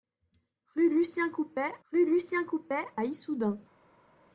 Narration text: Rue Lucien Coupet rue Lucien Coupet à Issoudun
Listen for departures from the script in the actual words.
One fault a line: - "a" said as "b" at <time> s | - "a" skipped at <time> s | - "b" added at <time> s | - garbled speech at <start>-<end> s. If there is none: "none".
none